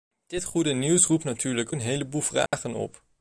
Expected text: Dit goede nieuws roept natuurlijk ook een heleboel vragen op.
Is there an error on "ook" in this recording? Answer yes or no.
yes